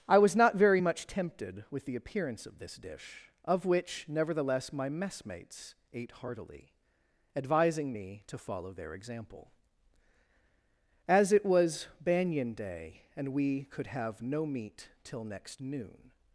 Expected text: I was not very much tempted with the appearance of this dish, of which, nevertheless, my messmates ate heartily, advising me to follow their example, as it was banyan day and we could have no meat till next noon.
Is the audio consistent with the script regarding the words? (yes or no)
yes